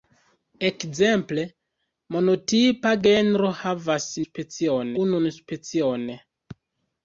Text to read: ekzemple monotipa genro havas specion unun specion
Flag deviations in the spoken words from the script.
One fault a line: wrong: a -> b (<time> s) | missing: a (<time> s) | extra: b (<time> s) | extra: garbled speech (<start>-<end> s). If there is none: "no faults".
no faults